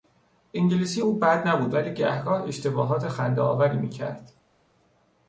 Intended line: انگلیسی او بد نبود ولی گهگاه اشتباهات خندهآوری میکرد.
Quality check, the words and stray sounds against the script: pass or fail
pass